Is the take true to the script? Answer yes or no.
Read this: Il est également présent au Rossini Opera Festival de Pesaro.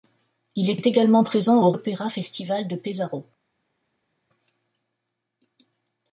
no